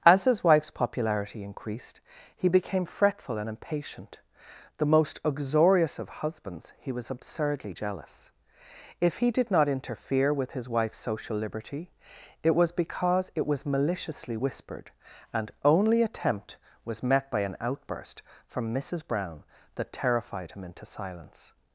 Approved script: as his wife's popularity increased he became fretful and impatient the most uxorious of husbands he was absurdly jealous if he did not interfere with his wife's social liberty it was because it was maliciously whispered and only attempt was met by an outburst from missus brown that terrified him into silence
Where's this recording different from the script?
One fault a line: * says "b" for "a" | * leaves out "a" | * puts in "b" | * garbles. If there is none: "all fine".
all fine